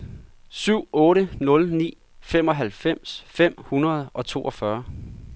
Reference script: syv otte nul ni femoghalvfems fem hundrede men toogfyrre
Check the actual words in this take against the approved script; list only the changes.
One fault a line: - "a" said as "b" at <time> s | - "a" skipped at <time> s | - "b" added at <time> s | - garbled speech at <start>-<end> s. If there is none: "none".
- "men" said as "og" at 4.1 s